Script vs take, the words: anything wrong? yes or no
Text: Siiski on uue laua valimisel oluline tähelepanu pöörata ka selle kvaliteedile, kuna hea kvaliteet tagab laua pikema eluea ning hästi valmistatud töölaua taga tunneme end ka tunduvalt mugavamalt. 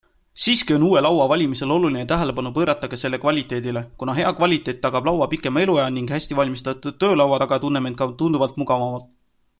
no